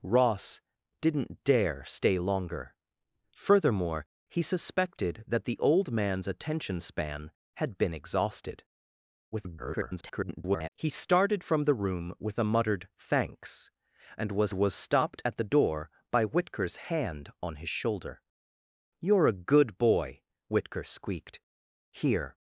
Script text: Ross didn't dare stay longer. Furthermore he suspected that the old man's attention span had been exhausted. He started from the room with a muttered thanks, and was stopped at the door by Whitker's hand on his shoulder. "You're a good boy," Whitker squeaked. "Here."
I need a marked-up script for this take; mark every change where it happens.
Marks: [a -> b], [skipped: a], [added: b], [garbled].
Ross didn't dare stay longer. Furthermore he suspected that the old man's attention span had been exhausted. [garbled] He started from the room with a muttered thanks, and was [added: was] stopped at the door by Whitker's hand on his shoulder. "You're a good boy," Whitker squeaked. "Here."